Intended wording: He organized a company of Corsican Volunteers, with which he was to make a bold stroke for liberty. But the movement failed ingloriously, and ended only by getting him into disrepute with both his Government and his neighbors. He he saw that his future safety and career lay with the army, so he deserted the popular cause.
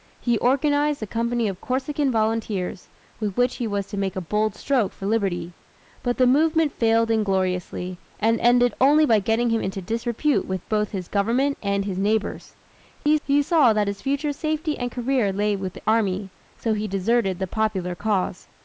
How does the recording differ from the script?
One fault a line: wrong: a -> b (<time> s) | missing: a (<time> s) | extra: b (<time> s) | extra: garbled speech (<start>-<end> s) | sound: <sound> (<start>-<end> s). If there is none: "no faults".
sound: dropout (13.0-13.1 s)